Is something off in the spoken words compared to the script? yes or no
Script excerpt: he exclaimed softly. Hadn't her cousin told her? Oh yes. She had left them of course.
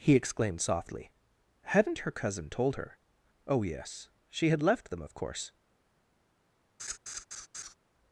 no